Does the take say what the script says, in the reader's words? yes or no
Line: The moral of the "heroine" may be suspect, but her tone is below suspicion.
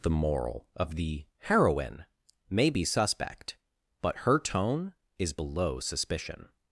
yes